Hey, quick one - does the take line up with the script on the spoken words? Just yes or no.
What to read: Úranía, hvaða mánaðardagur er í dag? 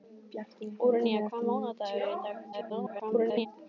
no